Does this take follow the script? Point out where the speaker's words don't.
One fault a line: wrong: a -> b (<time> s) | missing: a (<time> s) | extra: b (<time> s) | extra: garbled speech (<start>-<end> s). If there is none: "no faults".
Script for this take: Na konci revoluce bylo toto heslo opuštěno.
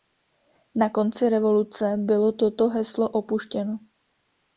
no faults